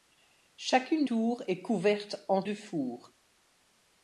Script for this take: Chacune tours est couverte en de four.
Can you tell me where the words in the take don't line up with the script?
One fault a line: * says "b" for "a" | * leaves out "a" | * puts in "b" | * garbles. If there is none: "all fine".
all fine